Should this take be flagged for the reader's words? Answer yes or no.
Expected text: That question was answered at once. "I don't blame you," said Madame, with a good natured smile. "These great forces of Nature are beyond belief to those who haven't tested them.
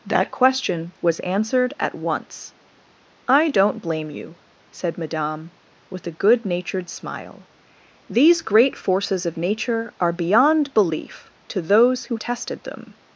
yes